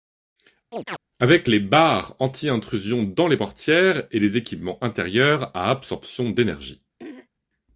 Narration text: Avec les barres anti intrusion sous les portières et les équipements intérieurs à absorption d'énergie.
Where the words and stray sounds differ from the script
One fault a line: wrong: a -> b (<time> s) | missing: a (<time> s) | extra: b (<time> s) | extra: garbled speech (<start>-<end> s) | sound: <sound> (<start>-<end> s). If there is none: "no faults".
sound: chirp (0.7-1.0 s)
wrong: sous -> dans (3.0 s)
sound: throat clearing (7.0-7.3 s)